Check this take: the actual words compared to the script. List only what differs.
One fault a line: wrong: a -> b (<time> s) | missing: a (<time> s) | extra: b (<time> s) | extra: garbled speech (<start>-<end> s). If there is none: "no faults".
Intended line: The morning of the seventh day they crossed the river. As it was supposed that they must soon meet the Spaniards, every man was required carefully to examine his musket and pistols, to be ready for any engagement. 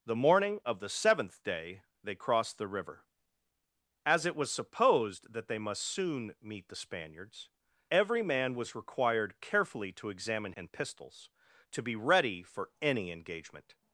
missing: his musket (10.5 s)